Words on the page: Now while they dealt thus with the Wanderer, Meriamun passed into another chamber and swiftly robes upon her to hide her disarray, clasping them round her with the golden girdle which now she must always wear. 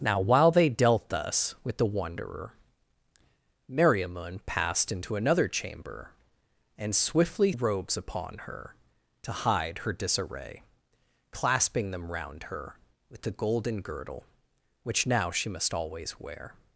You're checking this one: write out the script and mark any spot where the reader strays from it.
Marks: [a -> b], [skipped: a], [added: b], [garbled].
Now while they dealt thus with the Wanderer, Meriamun passed into another chamber and swiftly robes upon her to hide her disarray, clasping them round her with the golden girdle which now she must always wear.